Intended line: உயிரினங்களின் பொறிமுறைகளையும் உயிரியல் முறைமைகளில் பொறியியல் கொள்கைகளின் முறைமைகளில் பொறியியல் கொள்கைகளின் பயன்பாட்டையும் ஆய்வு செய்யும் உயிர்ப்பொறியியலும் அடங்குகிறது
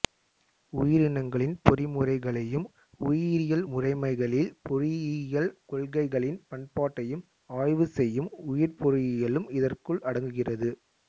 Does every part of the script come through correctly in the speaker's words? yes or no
no